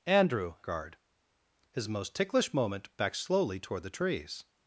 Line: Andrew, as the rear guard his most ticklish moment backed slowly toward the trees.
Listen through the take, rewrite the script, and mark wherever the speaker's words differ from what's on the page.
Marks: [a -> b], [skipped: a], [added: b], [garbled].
Andrew, [skipped: as the rear] guard his most ticklish moment backed slowly toward the trees.